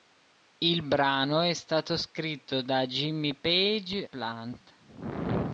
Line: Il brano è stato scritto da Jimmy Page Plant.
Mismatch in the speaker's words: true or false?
false